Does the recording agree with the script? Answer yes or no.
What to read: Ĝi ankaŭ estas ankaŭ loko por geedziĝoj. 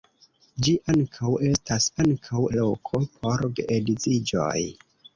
yes